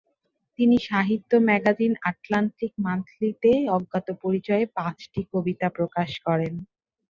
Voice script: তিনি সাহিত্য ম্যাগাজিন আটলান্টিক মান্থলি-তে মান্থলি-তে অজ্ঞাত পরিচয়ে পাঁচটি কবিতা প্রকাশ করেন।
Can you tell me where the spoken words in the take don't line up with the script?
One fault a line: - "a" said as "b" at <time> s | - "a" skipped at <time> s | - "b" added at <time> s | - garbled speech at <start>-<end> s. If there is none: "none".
- "মান্থলি-তে" skipped at 3.5 s